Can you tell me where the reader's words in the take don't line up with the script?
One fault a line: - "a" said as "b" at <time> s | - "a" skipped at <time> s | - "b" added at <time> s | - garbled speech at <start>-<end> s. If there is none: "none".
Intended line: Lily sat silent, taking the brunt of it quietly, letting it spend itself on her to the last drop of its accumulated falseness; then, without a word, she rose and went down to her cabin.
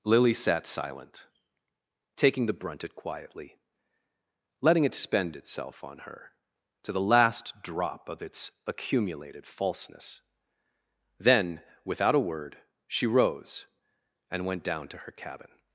- "of" skipped at 2.8 s